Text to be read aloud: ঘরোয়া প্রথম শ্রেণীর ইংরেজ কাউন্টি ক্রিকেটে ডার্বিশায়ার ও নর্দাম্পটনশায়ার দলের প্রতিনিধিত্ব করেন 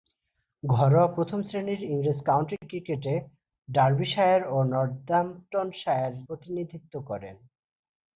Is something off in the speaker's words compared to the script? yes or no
yes